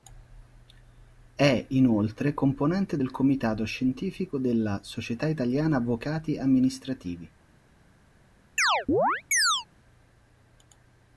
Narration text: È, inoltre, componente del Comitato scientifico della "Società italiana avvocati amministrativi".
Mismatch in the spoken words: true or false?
false